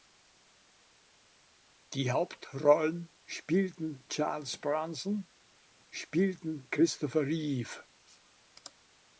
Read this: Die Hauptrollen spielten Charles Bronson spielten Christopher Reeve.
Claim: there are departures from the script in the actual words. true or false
false